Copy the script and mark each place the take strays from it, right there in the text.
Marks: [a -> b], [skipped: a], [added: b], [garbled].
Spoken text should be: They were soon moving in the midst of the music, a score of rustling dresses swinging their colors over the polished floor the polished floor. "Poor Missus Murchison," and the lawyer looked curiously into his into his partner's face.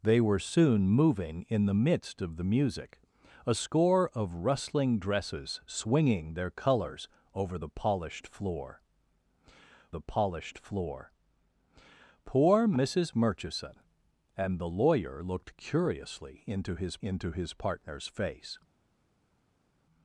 They were soon moving in the midst of the music, a score of rustling dresses swinging their colors over the polished floor the polished floor. "Poor Missus Murchison," and the lawyer looked curiously into his into his partner's face.